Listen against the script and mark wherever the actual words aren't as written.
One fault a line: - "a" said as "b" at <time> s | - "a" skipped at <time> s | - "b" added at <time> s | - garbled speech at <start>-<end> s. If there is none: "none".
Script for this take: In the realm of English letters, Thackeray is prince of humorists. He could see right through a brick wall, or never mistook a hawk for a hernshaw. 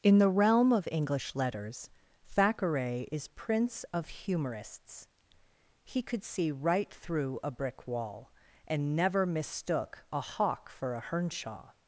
- "or" said as "and" at 8.7 s